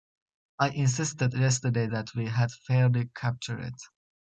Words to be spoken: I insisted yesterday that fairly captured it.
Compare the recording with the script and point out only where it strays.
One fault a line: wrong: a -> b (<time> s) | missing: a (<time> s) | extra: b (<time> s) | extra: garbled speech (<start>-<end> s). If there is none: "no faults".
extra: we had (2.2 s)